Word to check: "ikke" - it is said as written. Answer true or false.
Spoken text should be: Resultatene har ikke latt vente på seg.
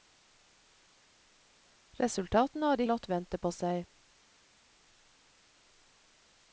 false